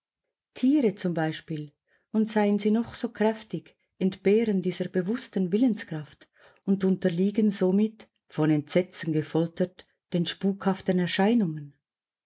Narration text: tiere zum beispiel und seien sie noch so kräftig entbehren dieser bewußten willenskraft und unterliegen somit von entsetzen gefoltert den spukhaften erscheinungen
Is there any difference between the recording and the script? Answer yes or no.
no